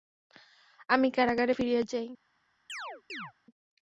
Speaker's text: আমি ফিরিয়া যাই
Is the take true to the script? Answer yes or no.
no